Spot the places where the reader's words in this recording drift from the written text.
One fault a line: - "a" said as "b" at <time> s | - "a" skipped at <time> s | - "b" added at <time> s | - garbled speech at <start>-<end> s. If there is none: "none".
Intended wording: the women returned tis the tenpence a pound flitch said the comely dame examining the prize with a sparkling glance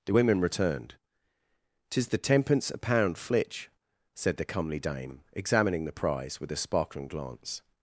none